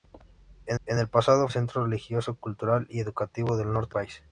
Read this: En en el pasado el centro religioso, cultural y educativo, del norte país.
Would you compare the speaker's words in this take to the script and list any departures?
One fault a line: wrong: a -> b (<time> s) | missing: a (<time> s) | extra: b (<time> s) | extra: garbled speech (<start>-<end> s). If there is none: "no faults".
no faults